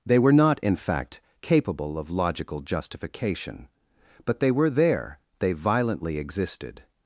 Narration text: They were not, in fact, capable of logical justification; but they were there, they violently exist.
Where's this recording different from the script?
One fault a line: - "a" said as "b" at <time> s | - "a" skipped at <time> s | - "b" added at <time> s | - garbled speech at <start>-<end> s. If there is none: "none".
- "exist" said as "existed" at 6.2 s